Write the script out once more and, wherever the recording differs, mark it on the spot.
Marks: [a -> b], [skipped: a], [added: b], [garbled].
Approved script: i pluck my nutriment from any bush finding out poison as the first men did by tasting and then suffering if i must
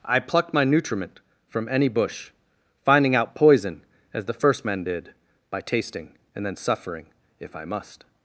i [pluck -> plucked] my nutriment from any bush finding out poison as the first men did by tasting and then suffering if i must